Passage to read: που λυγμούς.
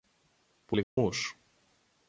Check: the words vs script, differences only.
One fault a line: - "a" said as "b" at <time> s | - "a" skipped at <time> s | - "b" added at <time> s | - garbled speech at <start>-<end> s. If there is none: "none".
none